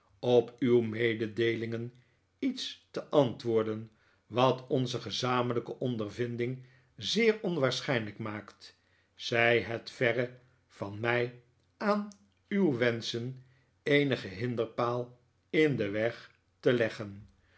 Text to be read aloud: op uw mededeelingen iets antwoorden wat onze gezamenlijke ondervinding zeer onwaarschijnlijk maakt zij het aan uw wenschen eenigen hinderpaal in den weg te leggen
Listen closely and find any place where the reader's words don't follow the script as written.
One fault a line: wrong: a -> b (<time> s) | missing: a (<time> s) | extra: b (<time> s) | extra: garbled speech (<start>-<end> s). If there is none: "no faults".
extra: te (2.9 s)
extra: verre van mij (9.9 s)